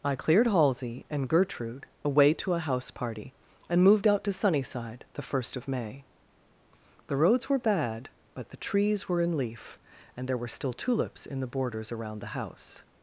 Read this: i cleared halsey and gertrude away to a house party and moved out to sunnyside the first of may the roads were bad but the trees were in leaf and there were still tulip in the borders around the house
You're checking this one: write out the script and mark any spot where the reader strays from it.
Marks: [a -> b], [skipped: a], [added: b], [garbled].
i cleared halsey and gertrude away to a house party and moved out to sunnyside the first of may the roads were bad but the trees were in leaf and there were still [tulip -> tulips] in the borders around the house